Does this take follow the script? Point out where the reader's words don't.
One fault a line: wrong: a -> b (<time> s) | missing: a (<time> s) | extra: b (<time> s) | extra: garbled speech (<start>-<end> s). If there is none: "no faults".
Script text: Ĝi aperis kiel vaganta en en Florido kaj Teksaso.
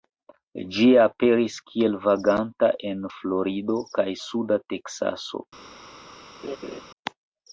missing: en (3.0 s)
extra: suda (4.3 s)